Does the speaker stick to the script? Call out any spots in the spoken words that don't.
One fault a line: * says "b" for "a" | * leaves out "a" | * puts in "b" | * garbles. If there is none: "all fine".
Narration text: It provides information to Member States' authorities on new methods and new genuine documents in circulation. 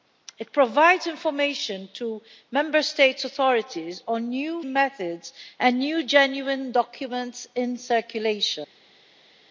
all fine